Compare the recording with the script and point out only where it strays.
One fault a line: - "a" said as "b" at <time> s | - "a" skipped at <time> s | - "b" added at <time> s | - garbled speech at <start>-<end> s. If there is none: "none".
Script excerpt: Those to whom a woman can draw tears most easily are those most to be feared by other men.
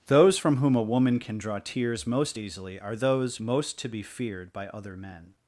- "to" said as "from" at 0.3 s